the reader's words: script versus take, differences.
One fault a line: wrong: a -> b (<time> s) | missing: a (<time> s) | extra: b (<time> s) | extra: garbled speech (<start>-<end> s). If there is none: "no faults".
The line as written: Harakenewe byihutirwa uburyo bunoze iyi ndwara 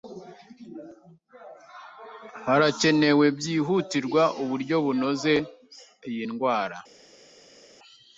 no faults